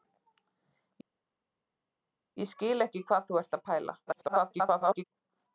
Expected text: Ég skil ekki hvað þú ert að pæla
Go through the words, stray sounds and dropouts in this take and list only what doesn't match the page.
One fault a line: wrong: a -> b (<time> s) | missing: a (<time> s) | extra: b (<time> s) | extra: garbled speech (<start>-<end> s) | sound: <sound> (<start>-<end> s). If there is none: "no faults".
extra: garbled speech (4.1-5.0 s)